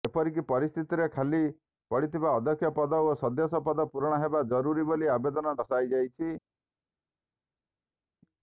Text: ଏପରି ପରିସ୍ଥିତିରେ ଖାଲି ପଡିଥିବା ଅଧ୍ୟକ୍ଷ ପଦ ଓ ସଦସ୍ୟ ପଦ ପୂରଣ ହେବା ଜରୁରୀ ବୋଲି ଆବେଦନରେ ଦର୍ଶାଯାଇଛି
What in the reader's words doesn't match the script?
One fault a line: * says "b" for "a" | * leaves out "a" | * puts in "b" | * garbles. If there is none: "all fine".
all fine